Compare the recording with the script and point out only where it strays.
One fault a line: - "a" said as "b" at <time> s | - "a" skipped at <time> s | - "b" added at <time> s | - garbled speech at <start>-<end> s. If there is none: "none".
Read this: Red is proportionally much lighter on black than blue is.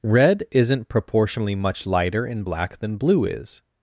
- "is" said as "isn't" at 0.5 s
- "on" said as "in" at 2.2 s